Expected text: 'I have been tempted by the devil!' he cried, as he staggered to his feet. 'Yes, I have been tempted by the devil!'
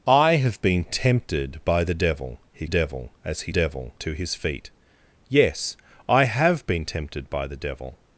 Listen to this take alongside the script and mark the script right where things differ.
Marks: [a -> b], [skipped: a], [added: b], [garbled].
'I have been tempted by the devil!' he [cried, -> devil] as he [staggered -> devil] to his feet. 'Yes, I have been tempted by the devil!'